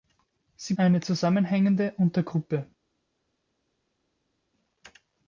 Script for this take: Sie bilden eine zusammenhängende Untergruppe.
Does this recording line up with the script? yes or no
no